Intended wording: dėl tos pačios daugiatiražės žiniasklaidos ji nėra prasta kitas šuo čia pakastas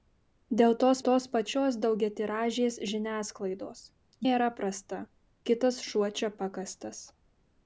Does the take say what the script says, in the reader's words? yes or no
no